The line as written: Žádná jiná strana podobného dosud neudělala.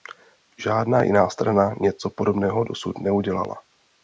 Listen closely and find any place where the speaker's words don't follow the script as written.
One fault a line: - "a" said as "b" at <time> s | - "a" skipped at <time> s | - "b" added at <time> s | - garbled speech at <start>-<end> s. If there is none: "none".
- "něco" added at 1.8 s